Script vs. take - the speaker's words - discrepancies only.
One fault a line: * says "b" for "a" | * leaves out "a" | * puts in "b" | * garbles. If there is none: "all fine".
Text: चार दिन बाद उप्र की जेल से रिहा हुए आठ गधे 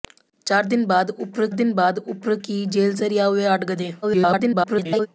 * puts in "दिन बाद उप्र"
* garbles